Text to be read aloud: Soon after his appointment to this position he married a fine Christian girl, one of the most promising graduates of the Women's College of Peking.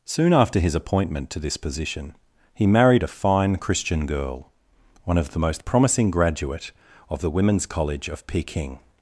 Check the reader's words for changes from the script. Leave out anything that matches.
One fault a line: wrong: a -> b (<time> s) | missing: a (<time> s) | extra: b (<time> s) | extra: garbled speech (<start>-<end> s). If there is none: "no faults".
wrong: graduates -> graduate (6.1 s)